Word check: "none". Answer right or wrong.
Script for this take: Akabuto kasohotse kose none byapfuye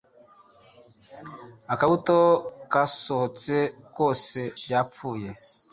wrong